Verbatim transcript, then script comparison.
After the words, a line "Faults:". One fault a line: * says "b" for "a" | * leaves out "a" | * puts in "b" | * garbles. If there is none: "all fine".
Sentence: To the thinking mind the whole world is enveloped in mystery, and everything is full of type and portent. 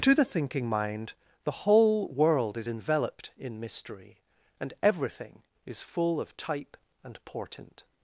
To the thinking mind the whole world is enveloped in mystery, and everything is full of type and portent.
Faults:
all fine